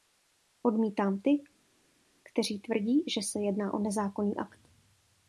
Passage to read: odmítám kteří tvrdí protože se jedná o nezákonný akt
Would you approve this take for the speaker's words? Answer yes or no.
no